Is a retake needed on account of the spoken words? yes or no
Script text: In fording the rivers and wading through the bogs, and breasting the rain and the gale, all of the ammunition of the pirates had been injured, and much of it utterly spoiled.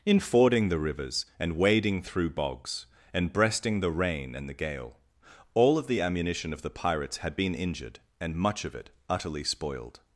yes